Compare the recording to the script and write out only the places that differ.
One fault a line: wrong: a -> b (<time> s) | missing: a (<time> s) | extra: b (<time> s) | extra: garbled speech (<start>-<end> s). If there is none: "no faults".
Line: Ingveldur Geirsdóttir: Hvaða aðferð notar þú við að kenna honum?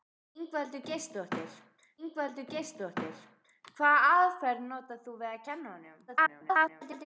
extra: ingveldur Geirsdóttir (2.1 s)
extra: garbled speech (6.1-7.1 s)